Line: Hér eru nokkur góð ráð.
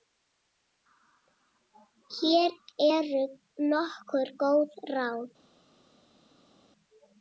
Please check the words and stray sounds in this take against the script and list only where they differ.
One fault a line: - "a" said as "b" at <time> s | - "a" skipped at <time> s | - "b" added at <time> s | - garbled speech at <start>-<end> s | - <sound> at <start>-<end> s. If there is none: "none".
none